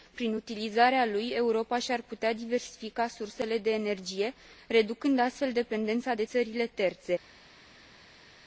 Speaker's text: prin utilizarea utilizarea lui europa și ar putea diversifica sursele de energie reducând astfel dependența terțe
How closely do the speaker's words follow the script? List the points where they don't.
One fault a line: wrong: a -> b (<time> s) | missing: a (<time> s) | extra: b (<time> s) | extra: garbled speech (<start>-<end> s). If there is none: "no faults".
missing: utilizarea (1.1 s)
extra: de țările (6.1 s)